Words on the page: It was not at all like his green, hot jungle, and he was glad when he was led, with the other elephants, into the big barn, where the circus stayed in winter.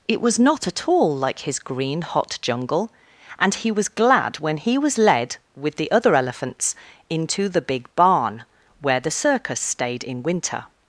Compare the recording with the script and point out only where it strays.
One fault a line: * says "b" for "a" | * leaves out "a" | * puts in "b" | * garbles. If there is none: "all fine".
all fine